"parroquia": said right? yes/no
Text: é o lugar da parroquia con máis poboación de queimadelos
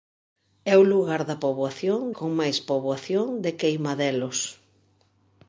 no